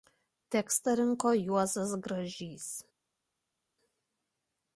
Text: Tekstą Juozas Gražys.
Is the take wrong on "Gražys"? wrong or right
right